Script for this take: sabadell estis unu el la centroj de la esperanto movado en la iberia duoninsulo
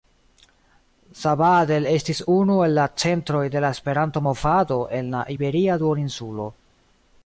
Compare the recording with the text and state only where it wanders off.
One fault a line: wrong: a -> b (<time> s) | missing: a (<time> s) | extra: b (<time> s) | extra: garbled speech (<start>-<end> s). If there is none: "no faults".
no faults